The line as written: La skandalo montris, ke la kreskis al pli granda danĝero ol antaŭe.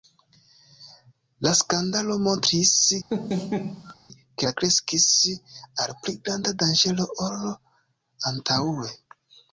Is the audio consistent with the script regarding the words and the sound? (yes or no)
no